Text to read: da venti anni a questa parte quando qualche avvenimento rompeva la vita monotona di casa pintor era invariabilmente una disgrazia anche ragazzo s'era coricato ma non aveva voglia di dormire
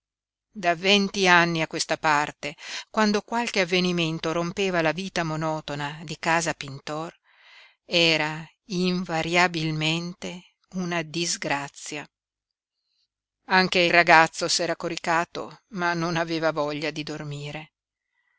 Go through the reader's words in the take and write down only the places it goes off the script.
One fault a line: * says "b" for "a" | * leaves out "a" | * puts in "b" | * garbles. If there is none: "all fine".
all fine